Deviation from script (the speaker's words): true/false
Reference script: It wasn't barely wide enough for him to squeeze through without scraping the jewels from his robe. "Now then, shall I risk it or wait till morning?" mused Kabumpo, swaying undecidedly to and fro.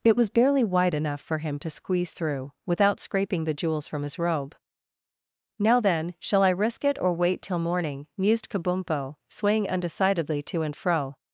true